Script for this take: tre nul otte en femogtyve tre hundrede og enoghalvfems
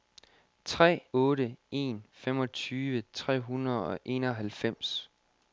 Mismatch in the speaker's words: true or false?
true